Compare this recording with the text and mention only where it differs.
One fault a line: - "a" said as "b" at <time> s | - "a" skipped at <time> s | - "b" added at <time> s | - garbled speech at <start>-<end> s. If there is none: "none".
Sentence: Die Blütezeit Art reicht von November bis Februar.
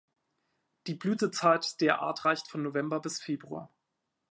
- "der" added at 1.8 s